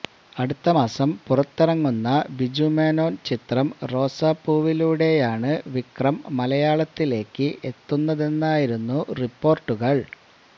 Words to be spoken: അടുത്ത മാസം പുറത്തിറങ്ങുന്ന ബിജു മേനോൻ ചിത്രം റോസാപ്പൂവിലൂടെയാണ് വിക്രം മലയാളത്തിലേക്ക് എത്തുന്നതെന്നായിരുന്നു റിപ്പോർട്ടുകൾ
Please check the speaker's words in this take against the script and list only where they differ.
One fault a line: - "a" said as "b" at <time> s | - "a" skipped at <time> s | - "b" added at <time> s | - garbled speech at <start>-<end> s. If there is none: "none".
none